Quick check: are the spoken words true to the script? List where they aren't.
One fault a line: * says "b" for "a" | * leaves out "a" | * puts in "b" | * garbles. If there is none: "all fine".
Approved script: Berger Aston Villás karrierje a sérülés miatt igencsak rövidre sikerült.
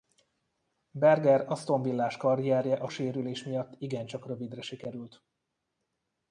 all fine